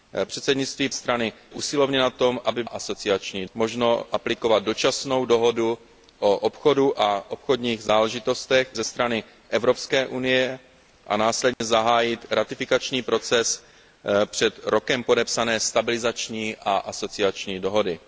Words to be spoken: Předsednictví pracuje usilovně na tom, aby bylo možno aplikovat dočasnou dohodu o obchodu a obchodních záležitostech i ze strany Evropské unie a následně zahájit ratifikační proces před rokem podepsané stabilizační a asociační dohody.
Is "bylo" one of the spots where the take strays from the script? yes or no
yes